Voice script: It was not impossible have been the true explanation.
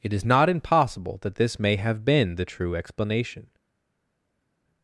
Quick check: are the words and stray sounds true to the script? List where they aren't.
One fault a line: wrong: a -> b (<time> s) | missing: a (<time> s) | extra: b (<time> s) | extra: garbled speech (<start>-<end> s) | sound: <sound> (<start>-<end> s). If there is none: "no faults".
wrong: was -> is (0.1 s)
extra: that this may (1.2 s)